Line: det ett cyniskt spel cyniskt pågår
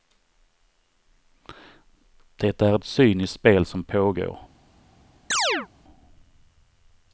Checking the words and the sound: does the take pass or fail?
fail